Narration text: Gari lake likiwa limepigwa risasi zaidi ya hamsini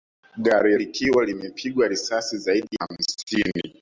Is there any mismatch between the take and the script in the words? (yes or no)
yes